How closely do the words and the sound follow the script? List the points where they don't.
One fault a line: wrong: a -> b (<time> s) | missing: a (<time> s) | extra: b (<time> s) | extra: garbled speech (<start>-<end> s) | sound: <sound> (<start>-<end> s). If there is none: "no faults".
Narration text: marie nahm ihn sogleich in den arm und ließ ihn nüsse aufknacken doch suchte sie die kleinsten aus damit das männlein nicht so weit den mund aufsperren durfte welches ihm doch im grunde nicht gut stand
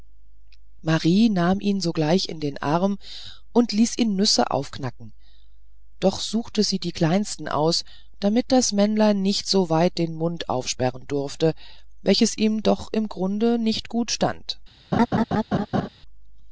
sound: laugh (14.9-15.9 s)